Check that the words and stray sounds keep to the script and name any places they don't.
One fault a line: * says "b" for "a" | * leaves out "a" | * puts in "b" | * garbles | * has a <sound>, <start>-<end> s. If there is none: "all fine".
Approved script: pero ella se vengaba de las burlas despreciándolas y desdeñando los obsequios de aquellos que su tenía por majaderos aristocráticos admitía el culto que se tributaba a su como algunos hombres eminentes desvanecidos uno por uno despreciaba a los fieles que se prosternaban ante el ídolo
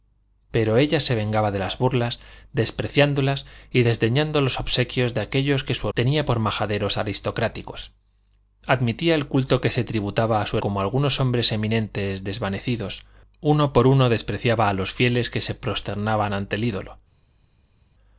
all fine